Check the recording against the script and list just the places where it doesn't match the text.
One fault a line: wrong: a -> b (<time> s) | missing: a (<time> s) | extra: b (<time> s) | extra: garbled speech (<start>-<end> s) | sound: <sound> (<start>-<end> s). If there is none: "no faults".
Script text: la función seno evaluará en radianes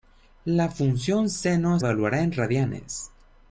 no faults